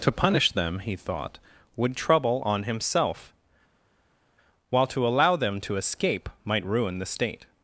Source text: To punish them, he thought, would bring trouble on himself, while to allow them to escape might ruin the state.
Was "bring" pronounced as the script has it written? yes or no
no